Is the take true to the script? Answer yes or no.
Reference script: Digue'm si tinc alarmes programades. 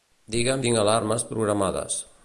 no